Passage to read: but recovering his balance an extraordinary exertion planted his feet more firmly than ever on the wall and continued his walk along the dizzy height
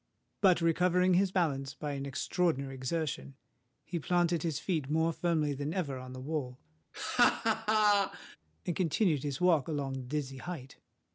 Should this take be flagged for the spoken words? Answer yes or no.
yes